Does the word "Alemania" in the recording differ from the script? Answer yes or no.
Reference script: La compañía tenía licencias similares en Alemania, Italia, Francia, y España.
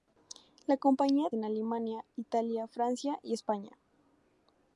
no